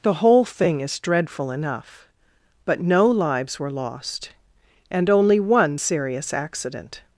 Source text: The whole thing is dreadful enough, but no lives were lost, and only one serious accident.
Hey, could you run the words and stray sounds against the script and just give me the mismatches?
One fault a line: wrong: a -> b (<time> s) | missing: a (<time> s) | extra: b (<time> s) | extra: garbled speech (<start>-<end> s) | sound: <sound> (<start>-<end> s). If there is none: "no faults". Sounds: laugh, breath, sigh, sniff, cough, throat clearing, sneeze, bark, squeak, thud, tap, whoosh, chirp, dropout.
no faults